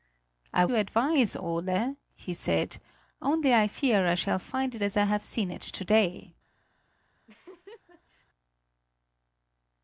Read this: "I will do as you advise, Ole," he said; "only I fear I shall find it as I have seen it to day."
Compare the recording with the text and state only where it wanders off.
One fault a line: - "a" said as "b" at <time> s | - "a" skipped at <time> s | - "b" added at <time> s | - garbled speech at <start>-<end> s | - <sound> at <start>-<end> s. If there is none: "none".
- "will do as" skipped at 0.7 s
- laugh at 7.3-8.3 s